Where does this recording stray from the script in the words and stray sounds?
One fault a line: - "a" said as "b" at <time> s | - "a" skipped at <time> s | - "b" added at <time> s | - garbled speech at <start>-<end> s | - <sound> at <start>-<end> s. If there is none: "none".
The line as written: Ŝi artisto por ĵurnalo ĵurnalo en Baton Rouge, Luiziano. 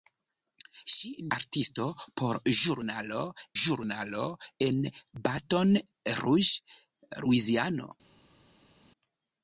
none